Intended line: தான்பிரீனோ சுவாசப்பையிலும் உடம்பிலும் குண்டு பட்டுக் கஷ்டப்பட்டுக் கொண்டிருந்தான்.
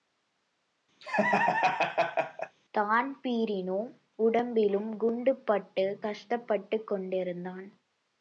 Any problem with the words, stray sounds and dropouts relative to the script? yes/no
yes